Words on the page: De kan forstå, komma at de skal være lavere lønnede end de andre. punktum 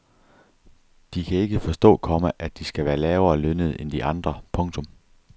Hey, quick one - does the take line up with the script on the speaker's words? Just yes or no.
no